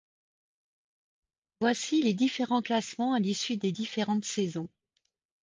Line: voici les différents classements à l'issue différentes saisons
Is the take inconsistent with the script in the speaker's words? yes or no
yes